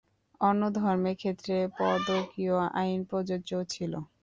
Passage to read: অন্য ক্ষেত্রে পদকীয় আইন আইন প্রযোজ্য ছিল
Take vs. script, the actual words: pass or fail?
fail